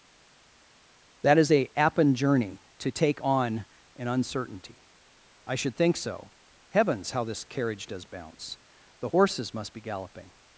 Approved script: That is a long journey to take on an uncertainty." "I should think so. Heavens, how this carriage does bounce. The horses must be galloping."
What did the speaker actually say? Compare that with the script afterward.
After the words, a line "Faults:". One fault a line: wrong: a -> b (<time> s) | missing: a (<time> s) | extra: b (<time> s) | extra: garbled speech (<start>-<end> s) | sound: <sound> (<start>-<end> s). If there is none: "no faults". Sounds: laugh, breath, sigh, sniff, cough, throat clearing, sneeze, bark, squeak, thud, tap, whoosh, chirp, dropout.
That is a appen journey to take on an uncertainty." "I should think so. Heavens, how this carriage does bounce. The horses must be galloping."
Faults:
wrong: long -> appen (1.8 s)